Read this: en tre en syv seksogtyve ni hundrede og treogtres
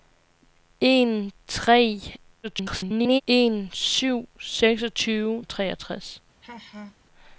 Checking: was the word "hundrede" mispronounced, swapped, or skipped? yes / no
yes